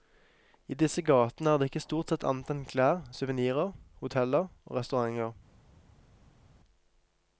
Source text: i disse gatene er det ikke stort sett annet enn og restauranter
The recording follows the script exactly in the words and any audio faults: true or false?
false